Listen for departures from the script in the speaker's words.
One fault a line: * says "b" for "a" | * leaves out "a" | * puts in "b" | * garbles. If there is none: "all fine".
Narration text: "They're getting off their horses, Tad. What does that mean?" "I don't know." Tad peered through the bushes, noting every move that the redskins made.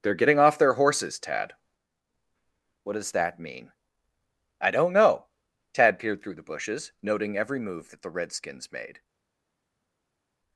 all fine